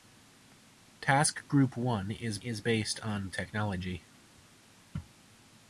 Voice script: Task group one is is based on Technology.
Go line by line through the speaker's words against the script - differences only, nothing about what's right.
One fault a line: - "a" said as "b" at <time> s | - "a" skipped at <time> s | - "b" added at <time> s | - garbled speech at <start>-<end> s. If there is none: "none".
none